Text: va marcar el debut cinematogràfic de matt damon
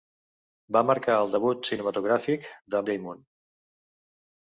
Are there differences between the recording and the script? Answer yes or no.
yes